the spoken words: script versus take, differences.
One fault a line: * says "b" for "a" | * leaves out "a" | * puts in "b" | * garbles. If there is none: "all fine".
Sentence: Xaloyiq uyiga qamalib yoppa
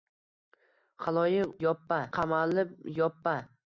* says "yoppa" for "uyiga"